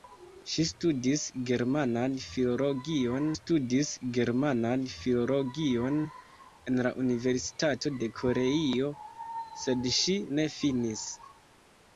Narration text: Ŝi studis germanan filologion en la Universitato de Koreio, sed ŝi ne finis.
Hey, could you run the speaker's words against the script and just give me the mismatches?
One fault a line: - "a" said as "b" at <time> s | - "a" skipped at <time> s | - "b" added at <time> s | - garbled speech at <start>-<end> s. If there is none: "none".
- "studis germanan filologion" added at 3.3 s